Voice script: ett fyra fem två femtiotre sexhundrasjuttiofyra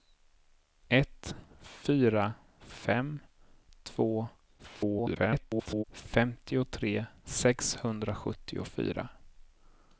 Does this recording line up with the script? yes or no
no